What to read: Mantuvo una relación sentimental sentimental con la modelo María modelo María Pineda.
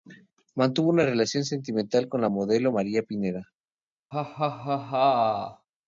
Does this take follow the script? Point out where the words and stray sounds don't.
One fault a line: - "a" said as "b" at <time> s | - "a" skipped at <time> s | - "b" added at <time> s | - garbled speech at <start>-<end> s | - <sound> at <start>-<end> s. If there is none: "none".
- "sentimental" skipped at 2.1 s
- "modelo María" skipped at 3.0 s
- laugh at 4.1-5.7 s